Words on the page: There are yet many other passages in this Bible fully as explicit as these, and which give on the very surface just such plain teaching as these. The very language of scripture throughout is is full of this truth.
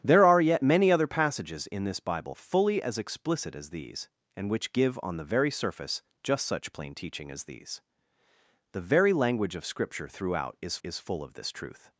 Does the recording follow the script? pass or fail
pass